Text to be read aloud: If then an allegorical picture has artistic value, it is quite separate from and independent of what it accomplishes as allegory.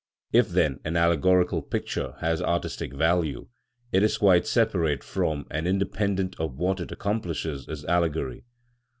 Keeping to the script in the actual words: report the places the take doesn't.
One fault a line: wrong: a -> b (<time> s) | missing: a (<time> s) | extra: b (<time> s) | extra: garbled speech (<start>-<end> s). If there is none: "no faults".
no faults